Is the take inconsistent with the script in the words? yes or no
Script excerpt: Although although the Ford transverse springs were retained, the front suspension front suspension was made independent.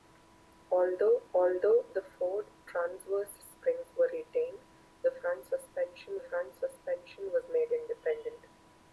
no